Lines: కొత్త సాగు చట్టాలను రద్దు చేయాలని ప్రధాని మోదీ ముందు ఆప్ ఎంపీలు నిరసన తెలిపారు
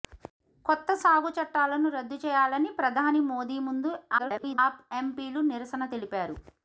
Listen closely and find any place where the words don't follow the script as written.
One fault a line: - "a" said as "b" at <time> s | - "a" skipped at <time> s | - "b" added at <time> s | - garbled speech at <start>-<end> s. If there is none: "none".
- garbled speech at 4.2-4.6 s